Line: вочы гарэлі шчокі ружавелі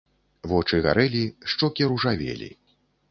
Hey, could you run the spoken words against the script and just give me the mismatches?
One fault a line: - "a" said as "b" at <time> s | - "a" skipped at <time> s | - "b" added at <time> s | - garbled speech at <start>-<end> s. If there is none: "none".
none